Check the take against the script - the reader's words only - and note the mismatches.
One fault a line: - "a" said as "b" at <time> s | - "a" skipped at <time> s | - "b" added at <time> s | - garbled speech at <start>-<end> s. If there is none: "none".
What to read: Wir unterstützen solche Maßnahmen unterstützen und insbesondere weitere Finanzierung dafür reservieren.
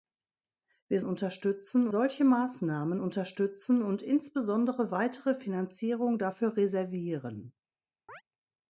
none